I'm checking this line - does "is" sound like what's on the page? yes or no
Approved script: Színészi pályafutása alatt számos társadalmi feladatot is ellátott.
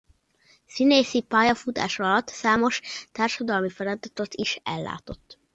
yes